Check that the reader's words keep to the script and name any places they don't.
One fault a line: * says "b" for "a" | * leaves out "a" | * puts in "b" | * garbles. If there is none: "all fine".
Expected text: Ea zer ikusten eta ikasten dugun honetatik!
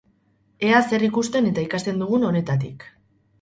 all fine